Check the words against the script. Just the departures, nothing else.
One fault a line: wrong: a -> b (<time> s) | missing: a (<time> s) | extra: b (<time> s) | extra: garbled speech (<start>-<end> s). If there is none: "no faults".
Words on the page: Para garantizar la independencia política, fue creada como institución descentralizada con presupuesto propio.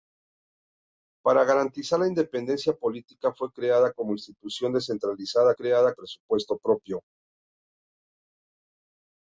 wrong: con -> creada (5.5 s)